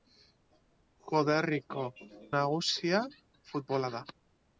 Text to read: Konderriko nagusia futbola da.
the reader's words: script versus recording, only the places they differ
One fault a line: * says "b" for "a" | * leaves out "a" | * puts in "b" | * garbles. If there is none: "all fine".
all fine